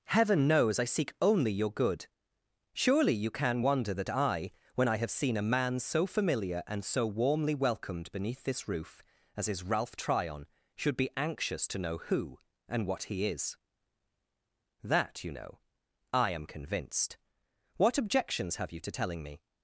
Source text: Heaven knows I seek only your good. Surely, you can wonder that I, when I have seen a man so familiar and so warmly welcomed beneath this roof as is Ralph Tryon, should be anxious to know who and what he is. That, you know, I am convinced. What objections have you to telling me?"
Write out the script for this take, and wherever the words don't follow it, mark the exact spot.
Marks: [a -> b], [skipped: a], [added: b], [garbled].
Heaven knows I seek only your good. Surely, you can wonder that I, when I have seen a man so familiar and so warmly welcomed beneath this roof as is Ralph Tryon, should be anxious to know who and what he is. That, you know, I am convinced. What objections have you to telling me?"